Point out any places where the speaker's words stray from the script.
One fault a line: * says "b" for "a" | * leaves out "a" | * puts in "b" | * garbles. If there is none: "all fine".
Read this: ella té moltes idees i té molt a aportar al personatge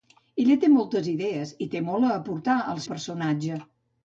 all fine